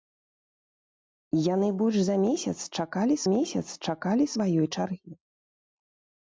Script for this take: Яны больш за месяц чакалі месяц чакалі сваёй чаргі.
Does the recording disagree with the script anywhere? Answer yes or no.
no